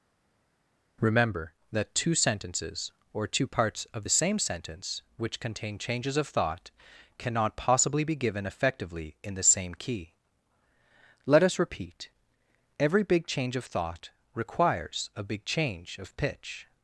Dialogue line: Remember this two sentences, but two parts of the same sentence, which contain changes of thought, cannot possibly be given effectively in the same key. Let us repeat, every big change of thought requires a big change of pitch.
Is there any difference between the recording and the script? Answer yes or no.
yes